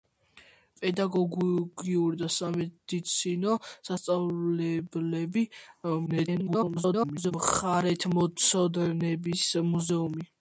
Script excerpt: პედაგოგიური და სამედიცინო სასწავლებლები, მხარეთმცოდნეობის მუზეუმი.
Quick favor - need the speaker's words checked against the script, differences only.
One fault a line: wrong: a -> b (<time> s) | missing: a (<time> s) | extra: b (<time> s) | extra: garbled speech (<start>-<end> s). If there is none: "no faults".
extra: garbled speech (6.1-7.3 s)